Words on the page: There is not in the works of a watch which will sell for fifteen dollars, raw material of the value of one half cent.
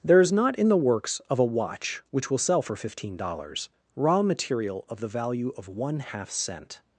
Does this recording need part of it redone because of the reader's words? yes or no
no